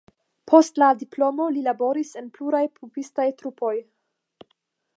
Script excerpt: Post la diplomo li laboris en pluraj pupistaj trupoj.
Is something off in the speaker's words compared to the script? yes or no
no